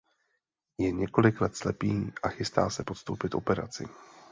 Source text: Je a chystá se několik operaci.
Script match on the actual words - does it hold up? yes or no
no